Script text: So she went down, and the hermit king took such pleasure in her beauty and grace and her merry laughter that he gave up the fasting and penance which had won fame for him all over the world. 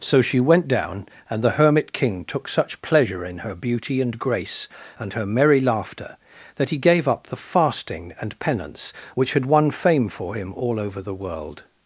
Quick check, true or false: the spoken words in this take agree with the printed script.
true